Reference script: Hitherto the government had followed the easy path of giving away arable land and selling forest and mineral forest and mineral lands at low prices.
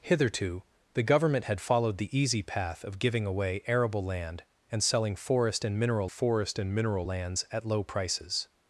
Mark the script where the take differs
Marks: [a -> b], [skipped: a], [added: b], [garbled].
Hitherto the government had followed the easy path of giving away arable land and selling forest and mineral forest and mineral lands at low prices.